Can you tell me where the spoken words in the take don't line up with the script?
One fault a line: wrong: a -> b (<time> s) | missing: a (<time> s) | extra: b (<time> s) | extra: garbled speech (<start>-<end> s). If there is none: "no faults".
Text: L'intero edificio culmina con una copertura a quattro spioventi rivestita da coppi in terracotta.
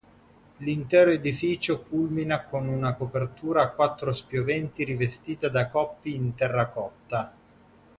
no faults